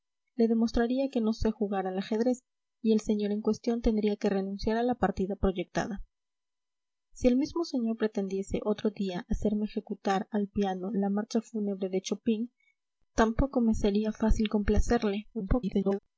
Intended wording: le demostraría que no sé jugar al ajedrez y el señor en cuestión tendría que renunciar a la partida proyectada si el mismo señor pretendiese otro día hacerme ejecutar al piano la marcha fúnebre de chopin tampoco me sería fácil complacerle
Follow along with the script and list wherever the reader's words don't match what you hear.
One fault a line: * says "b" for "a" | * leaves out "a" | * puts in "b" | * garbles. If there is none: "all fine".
* garbles